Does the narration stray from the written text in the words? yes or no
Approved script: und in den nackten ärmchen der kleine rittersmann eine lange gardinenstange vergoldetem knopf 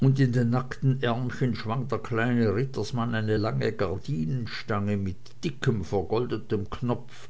yes